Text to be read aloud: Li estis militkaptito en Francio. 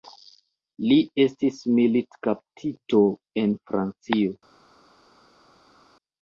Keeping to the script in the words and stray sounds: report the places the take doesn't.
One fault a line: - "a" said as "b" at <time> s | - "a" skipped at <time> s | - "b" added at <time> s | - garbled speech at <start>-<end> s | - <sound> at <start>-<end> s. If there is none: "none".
none